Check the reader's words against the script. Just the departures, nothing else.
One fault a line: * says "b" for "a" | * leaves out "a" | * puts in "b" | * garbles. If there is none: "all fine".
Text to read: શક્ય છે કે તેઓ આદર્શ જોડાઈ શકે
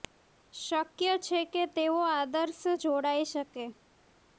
all fine